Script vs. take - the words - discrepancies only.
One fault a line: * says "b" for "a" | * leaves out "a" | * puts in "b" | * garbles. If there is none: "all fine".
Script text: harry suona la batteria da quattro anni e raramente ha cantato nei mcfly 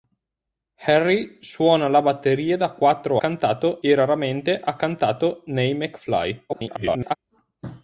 * says "cantato" for "anni"
* garbles